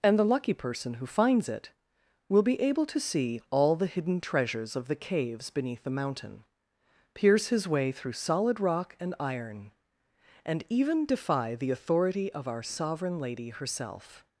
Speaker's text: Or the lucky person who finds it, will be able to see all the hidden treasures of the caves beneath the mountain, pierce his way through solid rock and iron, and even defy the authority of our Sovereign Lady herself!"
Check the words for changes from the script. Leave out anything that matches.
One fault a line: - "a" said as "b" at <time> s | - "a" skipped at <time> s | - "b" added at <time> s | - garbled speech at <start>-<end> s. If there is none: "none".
- "Or" said as "And" at 0.0 s